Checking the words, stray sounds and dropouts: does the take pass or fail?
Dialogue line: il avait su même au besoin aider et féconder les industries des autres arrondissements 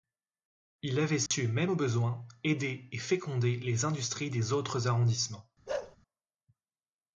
fail